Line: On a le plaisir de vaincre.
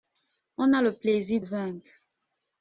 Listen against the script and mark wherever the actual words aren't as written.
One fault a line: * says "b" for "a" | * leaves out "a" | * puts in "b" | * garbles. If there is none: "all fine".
* leaves out "de"